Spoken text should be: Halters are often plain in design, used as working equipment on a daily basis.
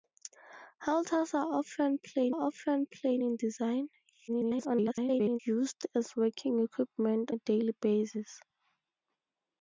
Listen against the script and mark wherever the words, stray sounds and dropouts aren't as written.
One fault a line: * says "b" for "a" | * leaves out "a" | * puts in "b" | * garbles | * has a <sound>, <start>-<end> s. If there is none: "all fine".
* puts in "often plain"
* garbles
* leaves out "on"